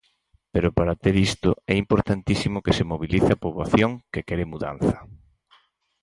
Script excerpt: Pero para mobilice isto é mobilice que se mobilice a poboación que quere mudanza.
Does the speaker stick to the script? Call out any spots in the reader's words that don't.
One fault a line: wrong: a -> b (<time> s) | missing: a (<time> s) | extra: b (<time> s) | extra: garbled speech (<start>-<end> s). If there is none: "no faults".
wrong: mobilice -> ter (1.0 s)
wrong: mobilice -> importantísimo (1.8 s)